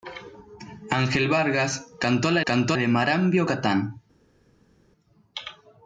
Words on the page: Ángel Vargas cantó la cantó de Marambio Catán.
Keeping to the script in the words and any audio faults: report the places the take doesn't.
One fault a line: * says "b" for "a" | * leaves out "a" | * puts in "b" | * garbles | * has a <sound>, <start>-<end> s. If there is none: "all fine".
all fine